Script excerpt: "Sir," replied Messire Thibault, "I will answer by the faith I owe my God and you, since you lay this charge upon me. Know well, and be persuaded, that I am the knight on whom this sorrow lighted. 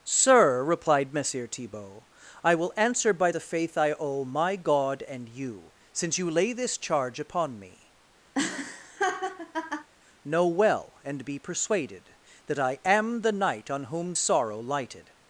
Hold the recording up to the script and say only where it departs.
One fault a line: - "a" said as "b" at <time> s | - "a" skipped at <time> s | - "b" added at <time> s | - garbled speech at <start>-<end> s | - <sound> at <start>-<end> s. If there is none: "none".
- laugh at 8.3-9.9 s
- "this" skipped at 14.2 s